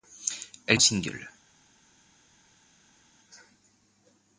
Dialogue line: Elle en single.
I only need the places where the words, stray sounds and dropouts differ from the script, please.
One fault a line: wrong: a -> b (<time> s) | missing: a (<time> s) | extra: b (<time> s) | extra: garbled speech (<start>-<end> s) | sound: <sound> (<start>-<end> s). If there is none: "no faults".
no faults